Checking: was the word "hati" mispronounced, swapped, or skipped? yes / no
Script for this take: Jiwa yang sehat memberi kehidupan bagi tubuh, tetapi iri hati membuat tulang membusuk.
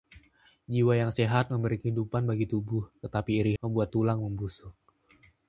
yes